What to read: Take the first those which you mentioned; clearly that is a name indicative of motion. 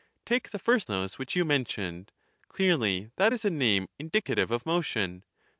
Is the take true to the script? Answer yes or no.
yes